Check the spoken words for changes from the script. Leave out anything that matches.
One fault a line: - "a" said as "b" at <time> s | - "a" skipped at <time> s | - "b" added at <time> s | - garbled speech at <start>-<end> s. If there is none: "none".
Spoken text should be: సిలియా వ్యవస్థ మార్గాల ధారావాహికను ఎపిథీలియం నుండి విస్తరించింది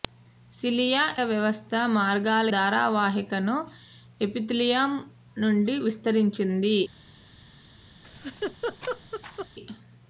none